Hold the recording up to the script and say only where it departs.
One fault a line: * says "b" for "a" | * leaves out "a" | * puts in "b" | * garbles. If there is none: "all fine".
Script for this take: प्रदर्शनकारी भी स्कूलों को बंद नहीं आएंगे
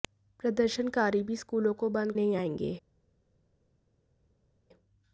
all fine